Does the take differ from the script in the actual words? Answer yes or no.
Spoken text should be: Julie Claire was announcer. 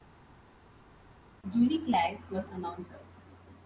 no